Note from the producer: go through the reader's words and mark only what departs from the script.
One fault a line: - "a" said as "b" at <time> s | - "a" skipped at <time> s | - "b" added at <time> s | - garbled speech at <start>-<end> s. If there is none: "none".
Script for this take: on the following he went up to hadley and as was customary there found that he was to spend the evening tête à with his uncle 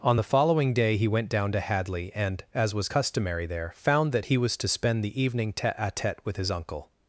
- "day" added at 0.7 s
- "up" said as "down" at 1.3 s
- "tête" added at 5.9 s